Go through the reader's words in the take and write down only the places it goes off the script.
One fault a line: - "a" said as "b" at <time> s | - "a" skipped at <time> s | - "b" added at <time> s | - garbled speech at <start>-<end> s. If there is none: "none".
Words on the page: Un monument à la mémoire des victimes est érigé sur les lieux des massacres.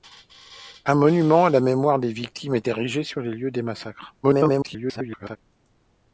- garbled speech at 4.2-5.4 s